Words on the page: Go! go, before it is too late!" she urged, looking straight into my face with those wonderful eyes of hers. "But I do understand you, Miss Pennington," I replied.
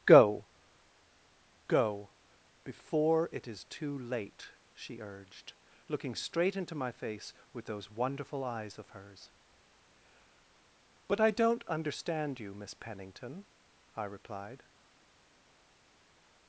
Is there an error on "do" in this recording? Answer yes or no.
yes